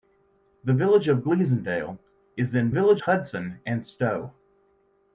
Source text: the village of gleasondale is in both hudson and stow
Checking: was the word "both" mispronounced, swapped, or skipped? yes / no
yes